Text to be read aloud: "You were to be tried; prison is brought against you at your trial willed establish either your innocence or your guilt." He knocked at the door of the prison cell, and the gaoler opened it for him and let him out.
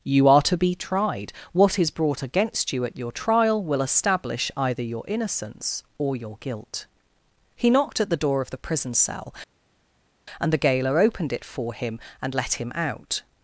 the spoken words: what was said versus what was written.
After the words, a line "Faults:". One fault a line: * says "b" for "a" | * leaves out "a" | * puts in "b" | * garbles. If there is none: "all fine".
"You are to be tried; what is brought against you at your trial will establish either your innocence or your guilt." He knocked at the door of the prison cell, and the gaoler opened it for him and let him out.
Faults:
* says "are" for "were"
* says "what" for "prison"
* says "will" for "willed"